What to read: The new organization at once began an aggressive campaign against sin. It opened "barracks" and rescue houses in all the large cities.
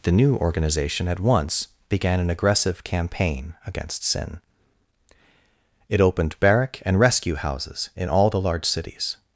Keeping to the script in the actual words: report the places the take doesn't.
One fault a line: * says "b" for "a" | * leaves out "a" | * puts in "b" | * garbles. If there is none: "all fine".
* says "barrack" for "barracks"